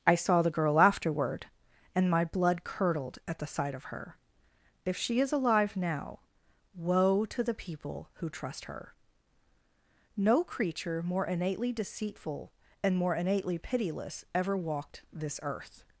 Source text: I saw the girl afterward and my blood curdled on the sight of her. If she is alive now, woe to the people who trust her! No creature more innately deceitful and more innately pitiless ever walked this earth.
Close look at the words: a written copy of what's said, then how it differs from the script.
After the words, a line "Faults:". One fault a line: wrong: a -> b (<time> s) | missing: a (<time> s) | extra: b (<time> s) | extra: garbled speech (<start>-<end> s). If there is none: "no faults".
I saw the girl afterward and my blood curdled at the sight of her. If she is alive now, woe to the people who trust her! No creature more innately deceitful and more innately pitiless ever walked this earth.
Faults:
wrong: on -> at (3.3 s)